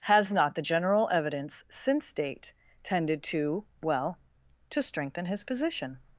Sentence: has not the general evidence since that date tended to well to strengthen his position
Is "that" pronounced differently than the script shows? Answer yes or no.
yes